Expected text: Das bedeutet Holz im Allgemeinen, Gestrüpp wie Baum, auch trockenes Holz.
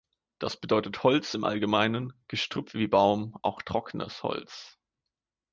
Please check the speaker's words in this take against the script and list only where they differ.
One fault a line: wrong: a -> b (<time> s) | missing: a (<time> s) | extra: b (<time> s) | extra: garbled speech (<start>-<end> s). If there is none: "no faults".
no faults